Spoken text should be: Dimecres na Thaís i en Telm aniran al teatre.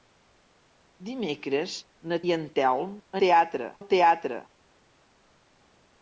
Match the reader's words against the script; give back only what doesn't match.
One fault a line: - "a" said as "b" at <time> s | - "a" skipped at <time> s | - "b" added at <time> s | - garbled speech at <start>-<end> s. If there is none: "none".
- "Thaís" skipped at 2.2 s
- "aniran" said as "teatre" at 3.3 s